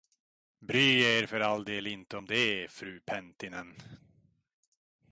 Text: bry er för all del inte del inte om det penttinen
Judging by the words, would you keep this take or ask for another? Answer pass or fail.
fail